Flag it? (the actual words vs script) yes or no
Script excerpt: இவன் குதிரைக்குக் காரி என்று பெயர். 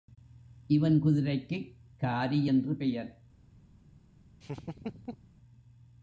no